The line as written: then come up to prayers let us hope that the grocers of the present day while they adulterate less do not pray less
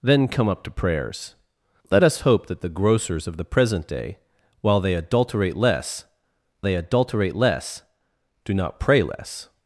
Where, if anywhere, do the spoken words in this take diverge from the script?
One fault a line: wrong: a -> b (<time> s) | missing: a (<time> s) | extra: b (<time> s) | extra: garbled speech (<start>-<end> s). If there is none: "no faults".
extra: they adulterate less (6.6 s)